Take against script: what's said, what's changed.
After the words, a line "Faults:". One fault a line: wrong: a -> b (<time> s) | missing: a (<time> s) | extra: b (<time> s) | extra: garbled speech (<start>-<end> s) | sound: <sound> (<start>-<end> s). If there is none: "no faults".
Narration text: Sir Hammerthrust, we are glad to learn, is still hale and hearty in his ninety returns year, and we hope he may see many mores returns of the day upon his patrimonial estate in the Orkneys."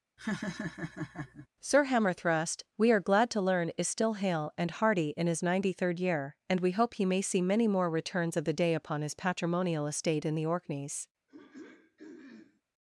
Sir Hammerthrust, we are glad to learn, is still hale and hearty in his ninety third year, and we hope he may see many more returns of the day upon his patrimonial estate in the Orkneys."
Faults:
sound: laugh (0.2-1.5 s)
wrong: returns -> third (5.7 s)
wrong: mores -> more (7.7 s)
sound: throat clearing (11.3-12.6 s)